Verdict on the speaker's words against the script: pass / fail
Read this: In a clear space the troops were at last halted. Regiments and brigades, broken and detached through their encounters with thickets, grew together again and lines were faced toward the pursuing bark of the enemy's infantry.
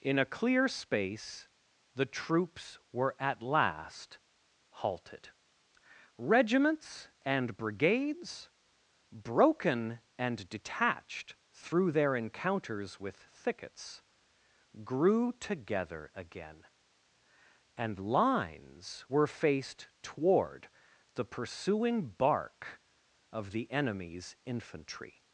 pass